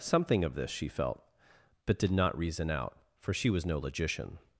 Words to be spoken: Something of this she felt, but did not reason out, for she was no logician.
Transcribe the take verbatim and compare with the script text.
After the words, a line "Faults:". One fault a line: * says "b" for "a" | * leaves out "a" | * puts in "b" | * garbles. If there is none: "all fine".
Something of this she felt, but did not reason out, for she was no logician.
Faults:
all fine